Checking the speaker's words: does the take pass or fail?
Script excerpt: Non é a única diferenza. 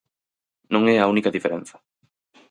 pass